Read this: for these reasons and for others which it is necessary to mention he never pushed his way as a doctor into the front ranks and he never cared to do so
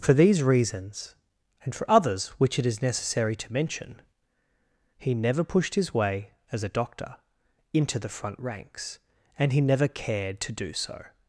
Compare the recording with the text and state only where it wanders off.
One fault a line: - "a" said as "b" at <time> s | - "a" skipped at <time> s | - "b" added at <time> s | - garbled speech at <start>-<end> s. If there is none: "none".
none